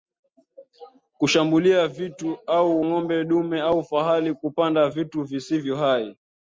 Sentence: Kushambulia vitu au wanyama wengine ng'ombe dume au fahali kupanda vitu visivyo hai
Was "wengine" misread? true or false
true